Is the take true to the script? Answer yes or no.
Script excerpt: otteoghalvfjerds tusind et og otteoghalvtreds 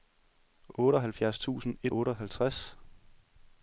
yes